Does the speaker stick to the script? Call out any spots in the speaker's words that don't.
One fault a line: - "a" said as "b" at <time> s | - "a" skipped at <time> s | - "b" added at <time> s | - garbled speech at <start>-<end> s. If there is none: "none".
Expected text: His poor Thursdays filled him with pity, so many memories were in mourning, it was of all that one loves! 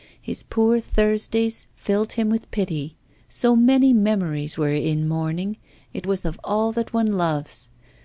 none